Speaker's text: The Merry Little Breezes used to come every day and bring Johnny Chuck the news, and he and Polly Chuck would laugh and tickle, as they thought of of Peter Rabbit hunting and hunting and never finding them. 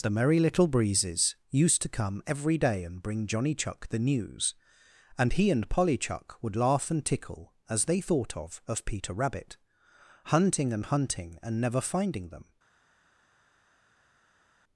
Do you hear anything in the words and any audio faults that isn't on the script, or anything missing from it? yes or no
no